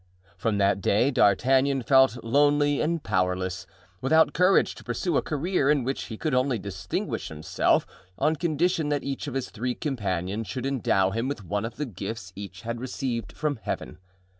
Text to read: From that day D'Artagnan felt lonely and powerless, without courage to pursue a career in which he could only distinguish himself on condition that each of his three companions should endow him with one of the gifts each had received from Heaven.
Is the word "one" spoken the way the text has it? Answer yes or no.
yes